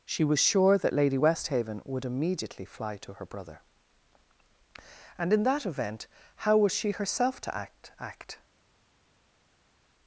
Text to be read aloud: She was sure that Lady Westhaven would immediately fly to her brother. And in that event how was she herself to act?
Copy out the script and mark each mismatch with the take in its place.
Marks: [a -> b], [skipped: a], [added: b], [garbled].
She was sure that Lady Westhaven would immediately fly to her brother. And in that event how was she herself to act? [added: act]